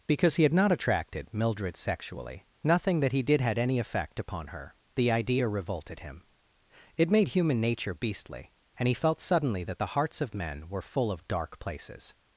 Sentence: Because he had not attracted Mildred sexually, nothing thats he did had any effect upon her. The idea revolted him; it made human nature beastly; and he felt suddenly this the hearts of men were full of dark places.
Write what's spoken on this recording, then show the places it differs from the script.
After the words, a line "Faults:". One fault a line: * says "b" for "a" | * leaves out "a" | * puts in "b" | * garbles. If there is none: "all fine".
Because he had not attracted Mildred sexually, nothing that he did had any effect upon her. The idea revolted him; it made human nature beastly; and he felt suddenly that the hearts of men were full of dark places.
Faults:
* says "that" for "thats"
* says "that" for "this"